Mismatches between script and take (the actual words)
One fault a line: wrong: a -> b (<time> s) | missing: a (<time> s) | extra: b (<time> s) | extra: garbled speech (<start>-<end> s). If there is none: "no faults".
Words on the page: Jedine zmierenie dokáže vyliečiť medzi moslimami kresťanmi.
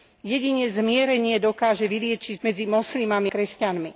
no faults